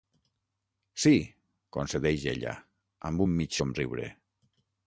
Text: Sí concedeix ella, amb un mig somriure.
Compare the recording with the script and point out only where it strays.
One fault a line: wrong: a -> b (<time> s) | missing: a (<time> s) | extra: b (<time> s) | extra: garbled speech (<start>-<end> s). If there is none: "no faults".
no faults